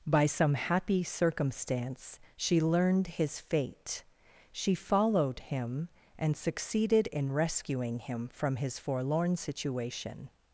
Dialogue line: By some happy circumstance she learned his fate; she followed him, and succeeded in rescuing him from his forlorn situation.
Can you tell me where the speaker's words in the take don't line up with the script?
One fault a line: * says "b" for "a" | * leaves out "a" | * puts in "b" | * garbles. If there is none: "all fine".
all fine